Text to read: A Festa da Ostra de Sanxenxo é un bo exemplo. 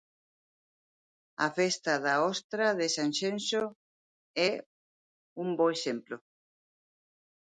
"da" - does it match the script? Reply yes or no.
yes